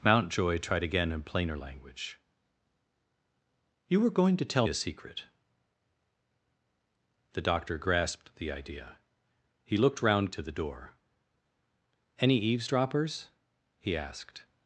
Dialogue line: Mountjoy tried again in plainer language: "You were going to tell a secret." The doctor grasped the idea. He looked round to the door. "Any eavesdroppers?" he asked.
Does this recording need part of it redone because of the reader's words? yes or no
no